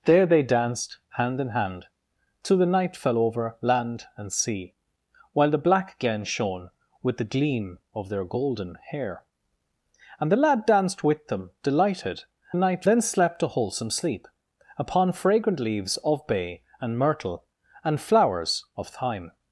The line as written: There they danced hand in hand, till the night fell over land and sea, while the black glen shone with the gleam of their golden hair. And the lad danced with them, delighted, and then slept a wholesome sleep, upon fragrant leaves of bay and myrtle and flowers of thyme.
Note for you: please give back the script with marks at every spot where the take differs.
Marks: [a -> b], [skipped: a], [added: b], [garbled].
There they danced hand in hand, till the night fell over land and sea, while the black glen shone with the gleam of their golden hair. And the lad danced with them, delighted, [and -> night] then slept a wholesome sleep, upon fragrant leaves of bay and myrtle and flowers of thyme.